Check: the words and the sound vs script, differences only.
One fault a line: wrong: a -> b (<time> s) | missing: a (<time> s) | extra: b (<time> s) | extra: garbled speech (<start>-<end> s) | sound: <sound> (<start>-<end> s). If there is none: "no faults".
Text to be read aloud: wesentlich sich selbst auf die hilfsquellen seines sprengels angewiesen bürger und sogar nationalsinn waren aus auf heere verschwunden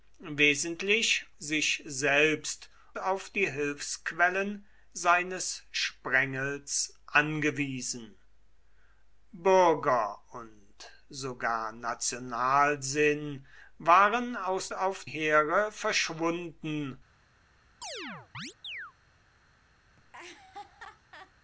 sound: chirp (17.8-18.9 s)
sound: laugh (20.0-21.3 s)